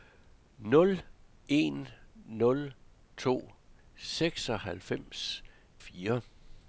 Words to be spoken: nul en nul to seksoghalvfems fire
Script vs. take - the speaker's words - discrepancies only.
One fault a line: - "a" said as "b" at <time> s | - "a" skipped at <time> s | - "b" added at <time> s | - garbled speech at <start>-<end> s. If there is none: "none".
none